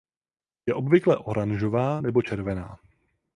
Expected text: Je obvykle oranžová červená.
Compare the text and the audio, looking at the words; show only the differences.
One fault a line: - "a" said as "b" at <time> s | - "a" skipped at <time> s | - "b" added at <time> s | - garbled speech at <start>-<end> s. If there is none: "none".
- "nebo" added at 2.0 s